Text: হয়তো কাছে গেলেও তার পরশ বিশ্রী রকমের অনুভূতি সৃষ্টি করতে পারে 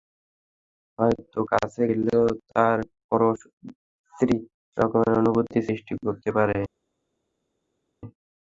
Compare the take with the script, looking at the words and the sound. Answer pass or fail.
pass